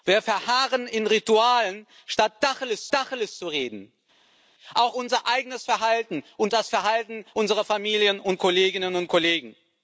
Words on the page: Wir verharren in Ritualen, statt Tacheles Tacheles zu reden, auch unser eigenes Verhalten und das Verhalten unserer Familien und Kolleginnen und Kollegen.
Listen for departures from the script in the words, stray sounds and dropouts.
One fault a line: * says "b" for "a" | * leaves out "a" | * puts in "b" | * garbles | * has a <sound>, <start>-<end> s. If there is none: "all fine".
all fine